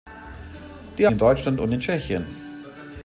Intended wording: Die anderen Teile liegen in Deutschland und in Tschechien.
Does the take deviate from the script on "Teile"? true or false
true